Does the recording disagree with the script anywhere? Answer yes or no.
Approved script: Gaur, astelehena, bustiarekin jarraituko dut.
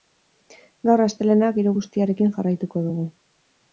yes